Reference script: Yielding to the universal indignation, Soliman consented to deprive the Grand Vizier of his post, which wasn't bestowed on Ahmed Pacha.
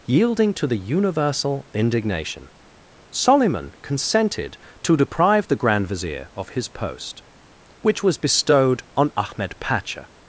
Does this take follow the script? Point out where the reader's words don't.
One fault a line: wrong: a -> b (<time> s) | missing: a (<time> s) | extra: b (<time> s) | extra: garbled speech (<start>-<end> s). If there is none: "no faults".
wrong: wasn't -> was (8.0 s)